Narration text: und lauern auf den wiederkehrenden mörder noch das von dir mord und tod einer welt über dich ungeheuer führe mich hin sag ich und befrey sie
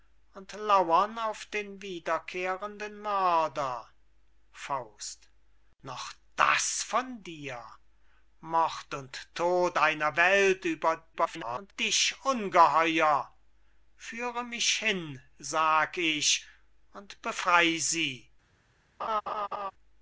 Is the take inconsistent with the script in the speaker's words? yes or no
yes